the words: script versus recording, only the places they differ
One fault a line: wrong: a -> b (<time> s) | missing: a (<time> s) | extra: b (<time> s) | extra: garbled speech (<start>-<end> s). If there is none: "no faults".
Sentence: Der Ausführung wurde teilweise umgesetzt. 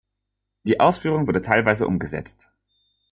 wrong: Der -> Die (0.6 s)